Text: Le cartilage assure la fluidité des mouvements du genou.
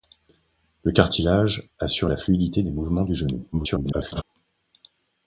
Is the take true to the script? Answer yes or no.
no